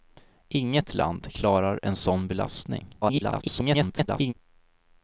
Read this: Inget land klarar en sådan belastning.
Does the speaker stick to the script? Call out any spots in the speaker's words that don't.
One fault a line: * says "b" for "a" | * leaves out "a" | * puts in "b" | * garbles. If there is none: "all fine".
* garbles